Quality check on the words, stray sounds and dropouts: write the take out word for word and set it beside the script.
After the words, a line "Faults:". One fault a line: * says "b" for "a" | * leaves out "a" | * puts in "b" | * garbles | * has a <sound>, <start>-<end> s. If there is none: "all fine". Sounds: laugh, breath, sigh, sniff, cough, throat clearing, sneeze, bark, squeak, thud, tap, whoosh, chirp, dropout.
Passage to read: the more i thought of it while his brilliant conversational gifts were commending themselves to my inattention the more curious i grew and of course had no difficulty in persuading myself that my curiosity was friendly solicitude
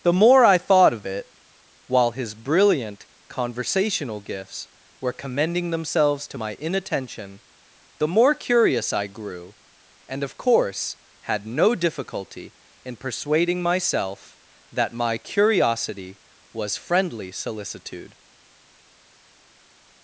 the more i thought of it while his brilliant conversational gifts were commending themselves to my inattention the more curious i grew and of course had no difficulty in persuading myself that my curiosity was friendly solicitude
Faults:
all fine